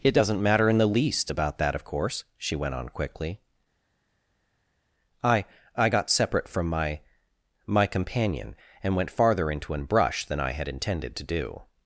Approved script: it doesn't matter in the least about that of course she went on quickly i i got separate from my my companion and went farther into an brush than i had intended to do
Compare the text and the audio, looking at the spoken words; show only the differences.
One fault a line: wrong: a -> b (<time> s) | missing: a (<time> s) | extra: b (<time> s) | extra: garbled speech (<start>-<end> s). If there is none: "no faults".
no faults